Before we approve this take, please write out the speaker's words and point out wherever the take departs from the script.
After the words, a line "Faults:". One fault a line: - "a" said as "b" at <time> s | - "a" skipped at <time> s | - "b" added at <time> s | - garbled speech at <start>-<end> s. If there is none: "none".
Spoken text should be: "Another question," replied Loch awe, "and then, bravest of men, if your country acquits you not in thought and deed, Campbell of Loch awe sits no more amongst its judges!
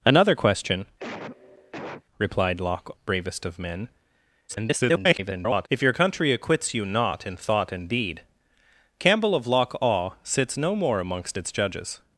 "Another question," replied Loch bravest of men, [garbled] if your country acquits you not in thought and deed, Campbell of Loch awe sits no more amongst its judges!
Faults:
- "awe and then" skipped at 2.9 s
- garbled speech at 4.5-5.7 s